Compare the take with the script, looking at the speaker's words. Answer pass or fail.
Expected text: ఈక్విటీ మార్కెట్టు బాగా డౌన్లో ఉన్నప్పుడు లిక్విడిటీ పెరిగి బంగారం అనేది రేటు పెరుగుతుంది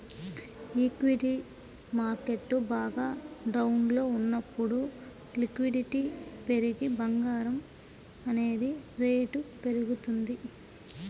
pass